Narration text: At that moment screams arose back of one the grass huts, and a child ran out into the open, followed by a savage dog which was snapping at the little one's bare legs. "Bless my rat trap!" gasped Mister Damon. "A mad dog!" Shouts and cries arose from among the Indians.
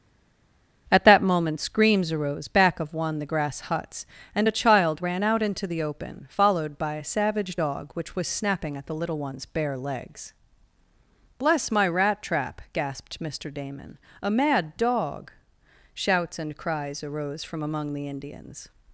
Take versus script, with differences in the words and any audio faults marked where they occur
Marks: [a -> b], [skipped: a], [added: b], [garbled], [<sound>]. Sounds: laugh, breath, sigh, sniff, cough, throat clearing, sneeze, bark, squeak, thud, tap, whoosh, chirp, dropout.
At that moment screams arose back of one the grass huts, and a child ran out into the open, followed by a savage dog which was snapping at the little one's bare legs. "Bless my rat trap!" gasped Mister Damon. "A mad dog!" Shouts and cries arose from among the Indians.